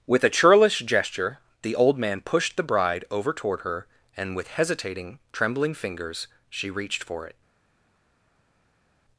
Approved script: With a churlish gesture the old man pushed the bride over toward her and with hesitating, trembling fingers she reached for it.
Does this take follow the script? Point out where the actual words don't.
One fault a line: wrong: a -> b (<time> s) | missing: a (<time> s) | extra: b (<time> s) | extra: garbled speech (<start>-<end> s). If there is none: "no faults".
no faults